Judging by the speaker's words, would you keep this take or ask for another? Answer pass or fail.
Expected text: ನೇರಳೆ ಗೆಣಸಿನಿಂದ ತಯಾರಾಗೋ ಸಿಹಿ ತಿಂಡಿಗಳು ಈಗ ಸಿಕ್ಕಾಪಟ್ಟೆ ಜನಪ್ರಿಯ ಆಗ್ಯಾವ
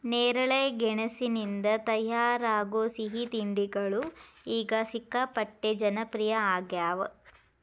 pass